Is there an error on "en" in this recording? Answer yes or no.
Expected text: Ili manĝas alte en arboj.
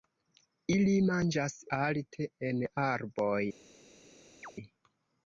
no